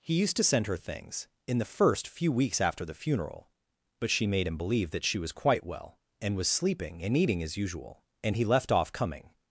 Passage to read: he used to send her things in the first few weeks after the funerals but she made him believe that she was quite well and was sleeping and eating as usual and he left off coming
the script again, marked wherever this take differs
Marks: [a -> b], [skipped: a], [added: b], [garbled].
he used to send her things in the first few weeks after the [funerals -> funeral] but she made him believe that she was quite well and was sleeping and eating as usual and he left off coming